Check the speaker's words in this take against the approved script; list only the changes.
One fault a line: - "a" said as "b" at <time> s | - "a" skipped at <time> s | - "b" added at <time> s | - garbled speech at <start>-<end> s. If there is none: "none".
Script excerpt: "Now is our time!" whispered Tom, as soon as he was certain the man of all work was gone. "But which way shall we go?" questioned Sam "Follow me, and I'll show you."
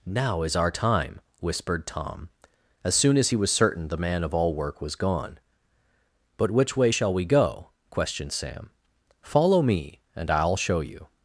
none